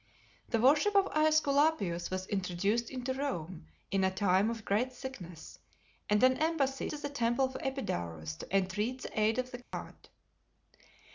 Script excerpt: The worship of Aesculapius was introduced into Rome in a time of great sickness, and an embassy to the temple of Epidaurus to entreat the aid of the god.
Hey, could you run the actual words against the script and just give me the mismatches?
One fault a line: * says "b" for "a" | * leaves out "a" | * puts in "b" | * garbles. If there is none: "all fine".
all fine